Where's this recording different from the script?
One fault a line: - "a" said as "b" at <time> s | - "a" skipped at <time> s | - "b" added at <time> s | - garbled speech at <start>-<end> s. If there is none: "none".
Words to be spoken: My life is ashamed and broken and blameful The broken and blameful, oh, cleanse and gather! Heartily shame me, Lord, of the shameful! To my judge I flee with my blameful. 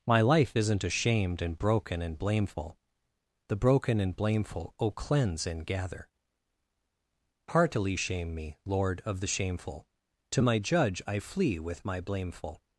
- "is" said as "isn't" at 0.6 s